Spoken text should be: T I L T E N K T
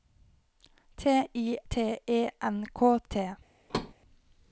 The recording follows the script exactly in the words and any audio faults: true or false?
false